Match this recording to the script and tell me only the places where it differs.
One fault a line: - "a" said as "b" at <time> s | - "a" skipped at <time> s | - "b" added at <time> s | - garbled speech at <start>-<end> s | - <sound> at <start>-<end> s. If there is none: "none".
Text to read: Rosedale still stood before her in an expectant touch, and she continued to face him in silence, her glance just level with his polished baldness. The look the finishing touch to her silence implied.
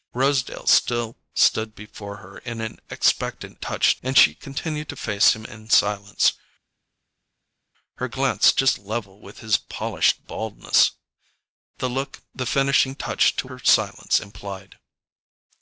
none